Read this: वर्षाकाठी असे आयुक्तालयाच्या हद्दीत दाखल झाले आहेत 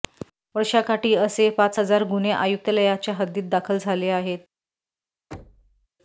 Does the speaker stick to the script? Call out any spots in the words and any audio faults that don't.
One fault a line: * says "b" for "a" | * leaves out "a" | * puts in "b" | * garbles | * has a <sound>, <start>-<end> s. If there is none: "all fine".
* puts in "पाच हजार गुन्हे"
* has a thud, 5.3-5.9 s